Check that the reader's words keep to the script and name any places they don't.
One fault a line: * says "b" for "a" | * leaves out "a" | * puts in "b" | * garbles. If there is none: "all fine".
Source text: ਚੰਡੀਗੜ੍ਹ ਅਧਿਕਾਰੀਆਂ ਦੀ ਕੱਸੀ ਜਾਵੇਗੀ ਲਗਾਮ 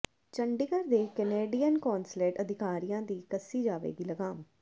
* puts in "ਦੇ ਕੈਨੇਡੀਅਨ ਕੌਂਸਲੇਟ"